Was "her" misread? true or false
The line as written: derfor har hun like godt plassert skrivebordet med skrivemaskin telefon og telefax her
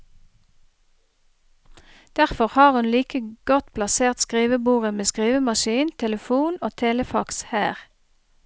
false